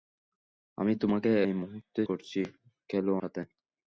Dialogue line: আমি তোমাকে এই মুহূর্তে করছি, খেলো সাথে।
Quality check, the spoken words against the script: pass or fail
pass